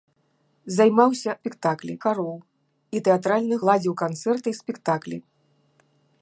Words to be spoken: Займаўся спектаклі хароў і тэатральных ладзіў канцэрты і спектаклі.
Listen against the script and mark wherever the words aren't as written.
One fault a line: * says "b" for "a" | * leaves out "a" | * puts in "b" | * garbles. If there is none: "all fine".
all fine